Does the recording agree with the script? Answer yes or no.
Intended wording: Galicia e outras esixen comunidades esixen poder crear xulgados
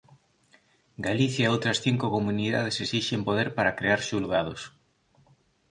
no